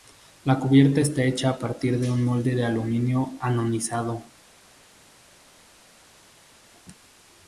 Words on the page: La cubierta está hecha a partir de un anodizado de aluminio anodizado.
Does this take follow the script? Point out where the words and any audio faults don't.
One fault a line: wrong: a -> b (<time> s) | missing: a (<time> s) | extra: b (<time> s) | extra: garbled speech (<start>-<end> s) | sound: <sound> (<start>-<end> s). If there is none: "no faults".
wrong: anodizado -> molde (2.2 s)